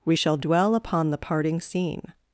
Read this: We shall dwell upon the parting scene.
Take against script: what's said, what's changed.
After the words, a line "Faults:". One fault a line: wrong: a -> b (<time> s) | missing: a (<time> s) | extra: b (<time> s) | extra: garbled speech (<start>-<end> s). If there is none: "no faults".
We shall dwell upon the parting scene.
Faults:
no faults